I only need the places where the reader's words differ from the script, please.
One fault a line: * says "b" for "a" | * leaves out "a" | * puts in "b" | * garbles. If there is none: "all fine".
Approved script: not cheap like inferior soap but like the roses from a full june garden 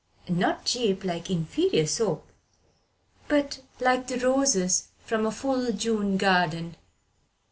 all fine